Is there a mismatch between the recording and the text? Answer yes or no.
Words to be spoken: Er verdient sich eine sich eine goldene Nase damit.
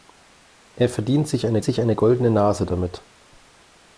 no